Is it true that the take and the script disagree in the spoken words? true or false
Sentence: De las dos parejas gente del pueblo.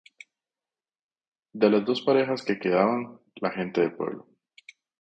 true